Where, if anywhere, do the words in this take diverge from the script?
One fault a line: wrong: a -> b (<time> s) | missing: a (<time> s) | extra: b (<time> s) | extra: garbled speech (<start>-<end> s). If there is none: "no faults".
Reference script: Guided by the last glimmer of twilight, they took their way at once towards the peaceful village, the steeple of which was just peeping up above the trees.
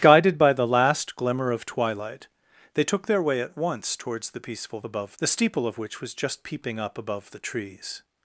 wrong: village -> above (4.8 s)